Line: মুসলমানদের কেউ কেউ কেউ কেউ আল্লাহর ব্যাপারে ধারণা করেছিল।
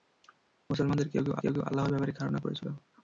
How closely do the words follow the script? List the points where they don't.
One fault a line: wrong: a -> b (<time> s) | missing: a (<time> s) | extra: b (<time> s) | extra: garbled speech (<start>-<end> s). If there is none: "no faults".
no faults